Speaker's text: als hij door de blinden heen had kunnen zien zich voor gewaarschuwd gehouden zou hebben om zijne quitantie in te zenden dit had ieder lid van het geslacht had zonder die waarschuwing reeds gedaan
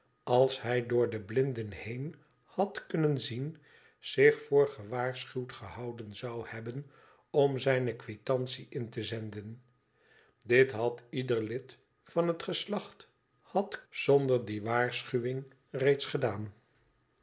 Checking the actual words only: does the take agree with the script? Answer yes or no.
yes